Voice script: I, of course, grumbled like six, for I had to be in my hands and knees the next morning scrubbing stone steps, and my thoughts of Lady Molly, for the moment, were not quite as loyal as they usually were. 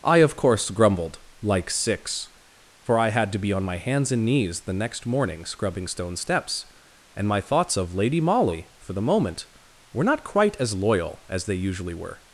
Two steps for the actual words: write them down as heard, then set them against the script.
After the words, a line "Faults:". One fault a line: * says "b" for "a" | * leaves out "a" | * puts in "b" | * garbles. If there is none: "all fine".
I, of course, grumbled like six, for I had to be on my hands and knees the next morning scrubbing stone steps, and my thoughts of Lady Molly, for the moment, were not quite as loyal as they usually were.
Faults:
* says "on" for "in"